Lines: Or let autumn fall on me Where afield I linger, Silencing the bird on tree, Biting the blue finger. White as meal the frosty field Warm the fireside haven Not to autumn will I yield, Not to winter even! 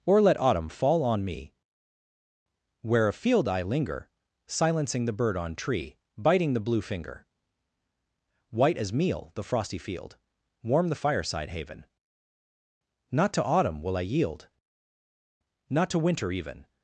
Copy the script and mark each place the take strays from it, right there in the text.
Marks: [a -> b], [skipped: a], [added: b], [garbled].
Or let autumn fall on me Where afield I linger, Silencing the bird on tree, Biting the blue finger. White as meal the frosty field Warm the fireside haven Not to autumn will I yield, Not to winter even!